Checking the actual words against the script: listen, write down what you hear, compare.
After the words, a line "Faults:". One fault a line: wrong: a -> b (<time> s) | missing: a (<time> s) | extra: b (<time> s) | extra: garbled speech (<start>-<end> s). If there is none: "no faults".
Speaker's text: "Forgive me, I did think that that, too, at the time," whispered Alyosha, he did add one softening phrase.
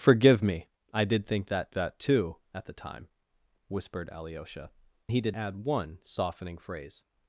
"Forgive me, I did think that that, too, at the time," whispered Alyosha, he did add one softening phrase.
Faults:
no faults